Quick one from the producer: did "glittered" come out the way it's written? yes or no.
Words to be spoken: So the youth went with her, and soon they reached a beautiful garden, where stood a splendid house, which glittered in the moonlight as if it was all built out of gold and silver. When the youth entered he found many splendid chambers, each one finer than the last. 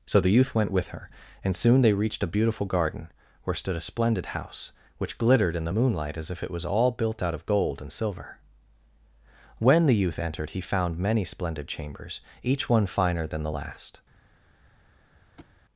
yes